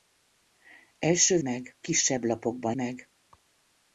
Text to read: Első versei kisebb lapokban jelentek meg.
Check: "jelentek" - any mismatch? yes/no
yes